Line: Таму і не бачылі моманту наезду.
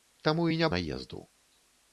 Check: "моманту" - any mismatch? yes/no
yes